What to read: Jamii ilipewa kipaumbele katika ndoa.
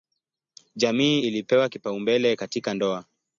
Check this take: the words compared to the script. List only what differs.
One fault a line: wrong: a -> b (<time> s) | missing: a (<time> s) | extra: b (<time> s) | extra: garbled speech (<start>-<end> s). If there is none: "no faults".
no faults